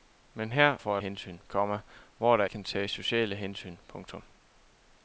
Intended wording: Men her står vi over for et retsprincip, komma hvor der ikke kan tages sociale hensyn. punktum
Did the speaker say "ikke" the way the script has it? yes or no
no